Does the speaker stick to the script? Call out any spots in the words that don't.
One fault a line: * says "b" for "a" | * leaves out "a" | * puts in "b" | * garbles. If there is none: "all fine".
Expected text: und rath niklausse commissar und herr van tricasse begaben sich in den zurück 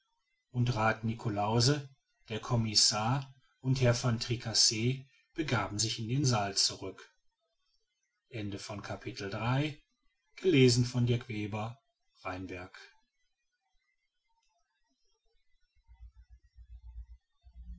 * puts in "der"
* puts in "saal"